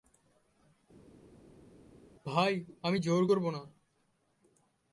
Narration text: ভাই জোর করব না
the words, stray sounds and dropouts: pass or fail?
fail